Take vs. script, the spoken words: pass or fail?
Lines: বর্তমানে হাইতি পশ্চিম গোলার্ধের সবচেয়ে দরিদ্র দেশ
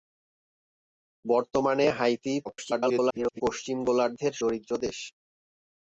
fail